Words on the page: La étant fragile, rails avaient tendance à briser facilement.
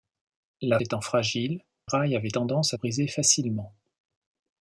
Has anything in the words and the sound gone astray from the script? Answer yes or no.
no